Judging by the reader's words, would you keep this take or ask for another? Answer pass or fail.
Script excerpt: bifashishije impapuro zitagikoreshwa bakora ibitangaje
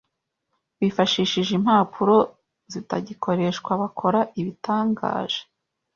pass